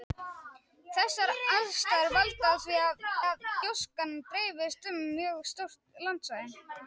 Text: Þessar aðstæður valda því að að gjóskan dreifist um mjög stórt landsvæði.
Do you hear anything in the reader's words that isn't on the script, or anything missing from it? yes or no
no